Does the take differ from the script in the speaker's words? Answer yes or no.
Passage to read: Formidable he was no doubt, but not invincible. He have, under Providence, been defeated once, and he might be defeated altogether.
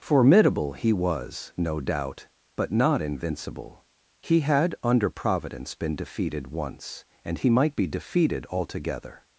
yes